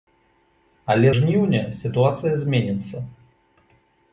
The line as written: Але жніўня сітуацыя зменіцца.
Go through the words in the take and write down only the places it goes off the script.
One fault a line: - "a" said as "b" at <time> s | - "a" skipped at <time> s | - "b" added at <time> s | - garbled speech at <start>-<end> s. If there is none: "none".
none